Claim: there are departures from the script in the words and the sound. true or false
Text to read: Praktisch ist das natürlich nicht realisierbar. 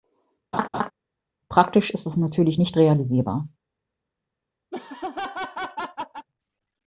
true